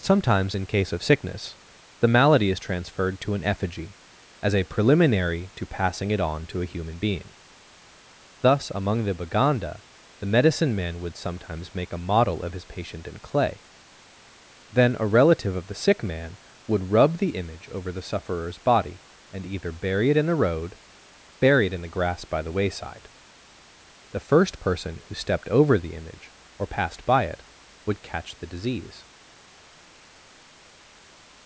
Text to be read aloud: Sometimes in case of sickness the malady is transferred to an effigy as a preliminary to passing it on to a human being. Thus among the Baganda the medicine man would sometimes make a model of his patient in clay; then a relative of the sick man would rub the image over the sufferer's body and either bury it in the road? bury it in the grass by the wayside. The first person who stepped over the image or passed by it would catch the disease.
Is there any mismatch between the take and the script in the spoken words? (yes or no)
no